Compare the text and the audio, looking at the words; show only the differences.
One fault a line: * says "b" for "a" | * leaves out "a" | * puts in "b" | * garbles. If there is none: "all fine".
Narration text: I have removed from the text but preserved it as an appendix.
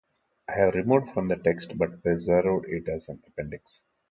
all fine